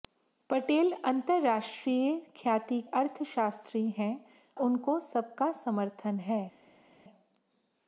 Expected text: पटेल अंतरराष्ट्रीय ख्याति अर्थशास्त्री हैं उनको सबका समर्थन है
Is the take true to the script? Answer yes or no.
yes